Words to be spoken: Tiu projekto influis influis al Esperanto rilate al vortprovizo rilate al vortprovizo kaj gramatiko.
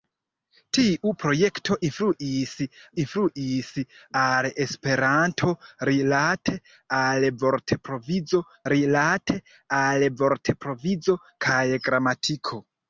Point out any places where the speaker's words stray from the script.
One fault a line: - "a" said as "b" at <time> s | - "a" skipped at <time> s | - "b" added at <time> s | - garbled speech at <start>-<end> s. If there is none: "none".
none